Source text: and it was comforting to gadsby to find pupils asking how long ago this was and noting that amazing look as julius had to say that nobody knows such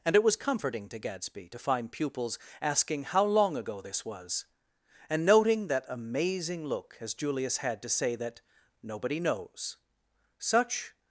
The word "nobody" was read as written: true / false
true